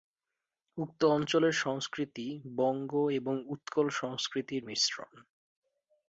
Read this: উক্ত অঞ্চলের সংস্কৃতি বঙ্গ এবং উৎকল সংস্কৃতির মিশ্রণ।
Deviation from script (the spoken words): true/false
false